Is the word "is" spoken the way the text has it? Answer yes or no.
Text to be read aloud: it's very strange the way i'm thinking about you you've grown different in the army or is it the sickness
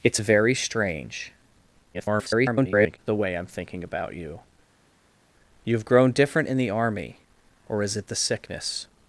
yes